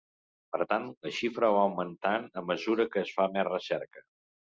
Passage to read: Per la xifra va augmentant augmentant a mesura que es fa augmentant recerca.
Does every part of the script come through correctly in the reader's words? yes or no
no